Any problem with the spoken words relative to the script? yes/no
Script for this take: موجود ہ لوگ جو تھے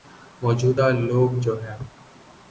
yes